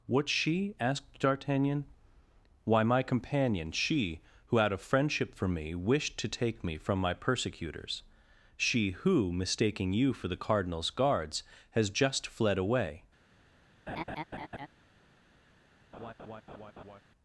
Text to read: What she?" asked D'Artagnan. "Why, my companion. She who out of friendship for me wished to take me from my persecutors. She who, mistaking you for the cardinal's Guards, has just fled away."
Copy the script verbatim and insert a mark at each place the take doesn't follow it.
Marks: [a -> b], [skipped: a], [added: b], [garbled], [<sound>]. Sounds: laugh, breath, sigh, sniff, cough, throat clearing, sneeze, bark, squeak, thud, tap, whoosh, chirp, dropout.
What she?" asked D'Artagnan. "Why, my companion. She who out of friendship for me wished to take me from my persecutors. She who, mistaking you for the cardinal's Guards, has just fled away." [laugh] [laugh]